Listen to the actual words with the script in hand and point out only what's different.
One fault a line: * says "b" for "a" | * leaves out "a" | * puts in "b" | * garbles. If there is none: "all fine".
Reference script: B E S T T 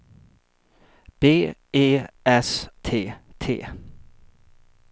all fine